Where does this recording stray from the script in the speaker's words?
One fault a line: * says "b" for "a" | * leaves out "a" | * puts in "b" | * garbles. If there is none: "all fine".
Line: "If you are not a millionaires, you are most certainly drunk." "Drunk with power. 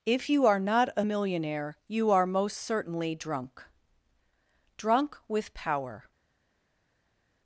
* says "millionaire" for "millionaires"